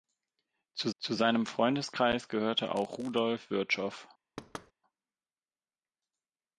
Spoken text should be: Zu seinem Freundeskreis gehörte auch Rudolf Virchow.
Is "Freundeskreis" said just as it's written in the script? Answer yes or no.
yes